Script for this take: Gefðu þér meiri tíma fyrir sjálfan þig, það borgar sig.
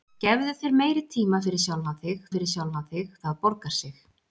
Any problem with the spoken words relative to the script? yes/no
yes